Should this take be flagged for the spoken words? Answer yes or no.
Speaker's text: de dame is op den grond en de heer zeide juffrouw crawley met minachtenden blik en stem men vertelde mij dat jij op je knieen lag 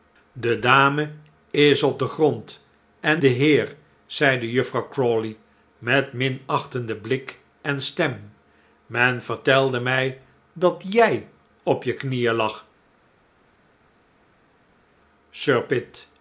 no